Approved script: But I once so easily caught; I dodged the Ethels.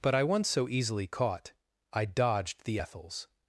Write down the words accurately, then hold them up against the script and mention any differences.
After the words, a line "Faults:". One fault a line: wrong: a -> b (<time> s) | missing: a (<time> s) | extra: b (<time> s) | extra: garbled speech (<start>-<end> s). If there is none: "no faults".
But I once so easily caught; I dodged the Ethels.
Faults:
no faults